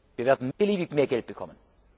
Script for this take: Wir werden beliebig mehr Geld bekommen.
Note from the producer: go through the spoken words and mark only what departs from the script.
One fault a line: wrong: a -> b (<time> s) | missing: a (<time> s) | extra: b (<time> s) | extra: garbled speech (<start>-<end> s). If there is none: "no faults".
no faults